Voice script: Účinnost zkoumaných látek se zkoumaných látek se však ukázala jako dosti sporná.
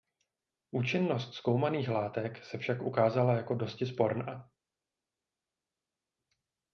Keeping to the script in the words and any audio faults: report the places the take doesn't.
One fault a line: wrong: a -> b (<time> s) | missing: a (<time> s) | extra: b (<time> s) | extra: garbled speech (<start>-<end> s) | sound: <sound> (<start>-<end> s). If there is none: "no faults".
missing: zkoumaných látek se (2.6 s)